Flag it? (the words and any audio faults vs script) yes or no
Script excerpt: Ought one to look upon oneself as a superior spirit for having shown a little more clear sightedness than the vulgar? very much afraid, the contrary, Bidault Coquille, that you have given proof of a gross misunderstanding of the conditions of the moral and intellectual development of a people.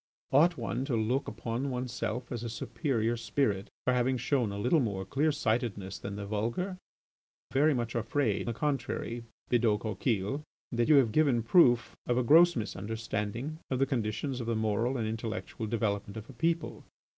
no